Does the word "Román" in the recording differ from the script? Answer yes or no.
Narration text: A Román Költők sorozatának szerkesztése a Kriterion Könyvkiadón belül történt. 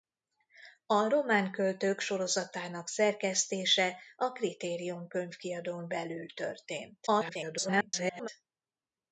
no